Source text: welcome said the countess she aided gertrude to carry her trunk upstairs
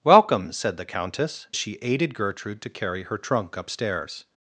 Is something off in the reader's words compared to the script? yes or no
no